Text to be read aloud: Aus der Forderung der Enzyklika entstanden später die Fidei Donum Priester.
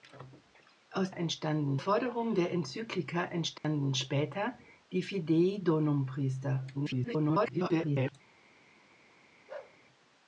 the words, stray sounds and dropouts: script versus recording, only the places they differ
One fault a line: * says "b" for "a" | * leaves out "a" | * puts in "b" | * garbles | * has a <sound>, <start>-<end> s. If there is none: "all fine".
* says "entstanden" for "der"
* has a dropout, 3.6-3.6 s
* garbles
* has a bark, 9.5-9.8 s